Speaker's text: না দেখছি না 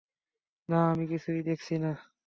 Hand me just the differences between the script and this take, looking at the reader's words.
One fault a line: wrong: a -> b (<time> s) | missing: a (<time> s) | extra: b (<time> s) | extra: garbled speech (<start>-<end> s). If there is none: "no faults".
extra: আমি কিছুই (0.9 s)